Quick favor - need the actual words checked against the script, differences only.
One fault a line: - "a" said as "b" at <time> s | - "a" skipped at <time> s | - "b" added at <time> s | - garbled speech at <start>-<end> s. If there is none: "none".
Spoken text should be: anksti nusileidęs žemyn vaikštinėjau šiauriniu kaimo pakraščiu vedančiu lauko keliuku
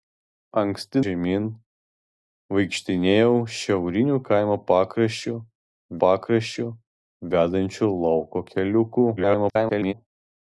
- "nusileidęs" skipped at 1.0 s
- "pakraščiu" added at 6.0 s
- garbled speech at 9.2-9.9 s